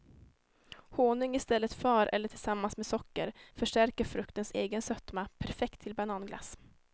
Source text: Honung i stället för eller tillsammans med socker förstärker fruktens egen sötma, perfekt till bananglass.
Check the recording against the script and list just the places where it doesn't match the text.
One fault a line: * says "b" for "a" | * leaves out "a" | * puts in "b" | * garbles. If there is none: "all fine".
all fine